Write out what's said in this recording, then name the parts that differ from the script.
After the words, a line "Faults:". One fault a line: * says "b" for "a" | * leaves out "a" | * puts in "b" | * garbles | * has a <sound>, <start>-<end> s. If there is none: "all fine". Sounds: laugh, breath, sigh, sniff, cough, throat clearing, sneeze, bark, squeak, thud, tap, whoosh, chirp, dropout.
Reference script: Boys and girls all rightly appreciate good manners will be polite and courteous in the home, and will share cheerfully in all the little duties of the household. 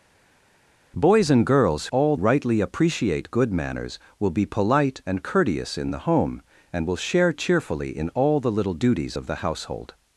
Boys and girls all rightly appreciate good manners will be polite and courteous in the home, and will share cheerfully in all the little duties of the household.
Faults:
all fine